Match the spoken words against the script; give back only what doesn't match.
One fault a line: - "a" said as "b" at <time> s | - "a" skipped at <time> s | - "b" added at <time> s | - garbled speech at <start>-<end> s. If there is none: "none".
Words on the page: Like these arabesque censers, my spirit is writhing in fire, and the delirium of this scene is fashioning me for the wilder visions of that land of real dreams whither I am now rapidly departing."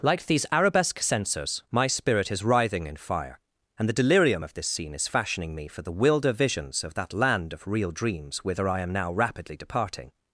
none